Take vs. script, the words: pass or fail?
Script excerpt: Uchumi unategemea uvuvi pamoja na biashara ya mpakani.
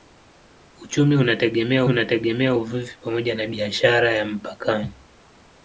fail